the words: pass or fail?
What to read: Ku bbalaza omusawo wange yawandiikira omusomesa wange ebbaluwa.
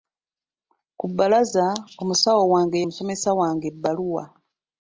fail